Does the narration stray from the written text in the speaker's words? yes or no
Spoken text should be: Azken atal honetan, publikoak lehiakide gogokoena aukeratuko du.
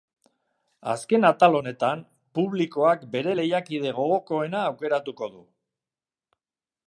yes